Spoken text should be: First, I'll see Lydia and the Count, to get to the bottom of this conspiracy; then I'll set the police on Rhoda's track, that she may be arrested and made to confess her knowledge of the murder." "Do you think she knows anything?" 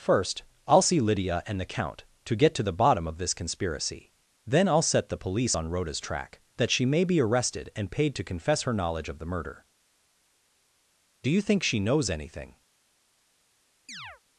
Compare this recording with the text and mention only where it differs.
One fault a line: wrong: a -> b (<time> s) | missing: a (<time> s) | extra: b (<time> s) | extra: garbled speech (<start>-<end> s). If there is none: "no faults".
wrong: made -> paid (7.9 s)